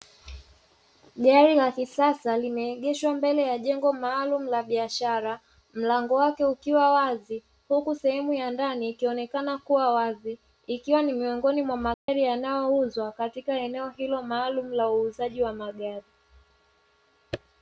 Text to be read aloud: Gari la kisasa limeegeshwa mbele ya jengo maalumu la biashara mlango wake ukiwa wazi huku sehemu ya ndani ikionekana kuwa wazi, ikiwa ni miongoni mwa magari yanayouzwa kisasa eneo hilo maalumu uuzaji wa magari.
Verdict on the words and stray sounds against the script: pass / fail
fail